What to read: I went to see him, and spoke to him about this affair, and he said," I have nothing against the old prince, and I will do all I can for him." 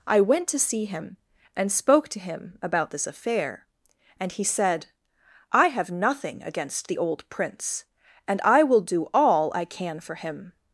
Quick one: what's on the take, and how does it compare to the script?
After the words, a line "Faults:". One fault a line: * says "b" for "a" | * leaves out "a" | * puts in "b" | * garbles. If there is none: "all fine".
I went to see him, and spoke to him about this affair, and he said," I have nothing against the old prince, and I will do all I can for him."
Faults:
all fine